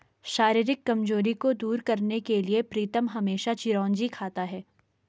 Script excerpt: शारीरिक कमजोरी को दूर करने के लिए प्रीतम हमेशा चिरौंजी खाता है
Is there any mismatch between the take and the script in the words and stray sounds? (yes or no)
no